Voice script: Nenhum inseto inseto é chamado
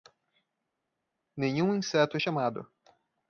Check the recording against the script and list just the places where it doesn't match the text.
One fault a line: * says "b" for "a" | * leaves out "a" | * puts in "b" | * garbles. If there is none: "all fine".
* leaves out "inseto"